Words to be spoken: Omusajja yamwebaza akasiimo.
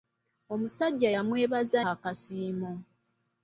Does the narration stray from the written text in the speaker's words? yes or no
no